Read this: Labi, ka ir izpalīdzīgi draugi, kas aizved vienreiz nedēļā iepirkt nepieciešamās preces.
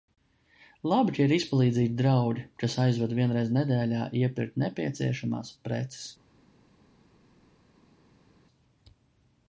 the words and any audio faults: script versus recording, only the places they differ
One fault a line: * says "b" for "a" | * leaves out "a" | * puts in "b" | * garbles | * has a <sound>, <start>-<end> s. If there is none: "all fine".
all fine